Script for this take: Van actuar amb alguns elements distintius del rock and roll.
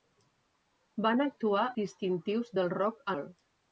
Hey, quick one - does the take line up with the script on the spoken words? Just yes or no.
no